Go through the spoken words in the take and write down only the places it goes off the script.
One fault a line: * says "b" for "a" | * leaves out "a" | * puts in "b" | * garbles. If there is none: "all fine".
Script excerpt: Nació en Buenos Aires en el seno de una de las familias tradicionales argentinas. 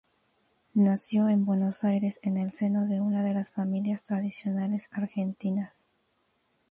all fine